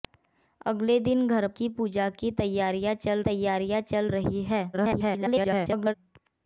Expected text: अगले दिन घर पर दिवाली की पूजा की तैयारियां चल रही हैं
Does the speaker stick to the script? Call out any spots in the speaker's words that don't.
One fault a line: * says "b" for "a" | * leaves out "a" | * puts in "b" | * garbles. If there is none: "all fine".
* says "की पूजा" for "पर दिवाली"
* says "तैयारियां चल" for "पूजा की"
* garbles